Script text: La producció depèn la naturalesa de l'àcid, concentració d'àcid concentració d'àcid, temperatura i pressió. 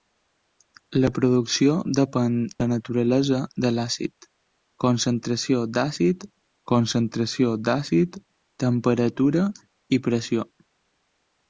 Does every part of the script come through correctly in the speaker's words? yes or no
yes